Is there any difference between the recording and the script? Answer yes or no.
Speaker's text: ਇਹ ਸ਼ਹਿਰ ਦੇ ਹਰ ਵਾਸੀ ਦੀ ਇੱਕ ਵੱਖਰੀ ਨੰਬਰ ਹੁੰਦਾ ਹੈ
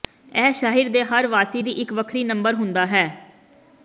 no